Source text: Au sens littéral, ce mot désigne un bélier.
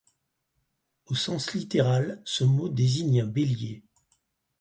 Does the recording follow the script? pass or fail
pass